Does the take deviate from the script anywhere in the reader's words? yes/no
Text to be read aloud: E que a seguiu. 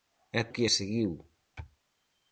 no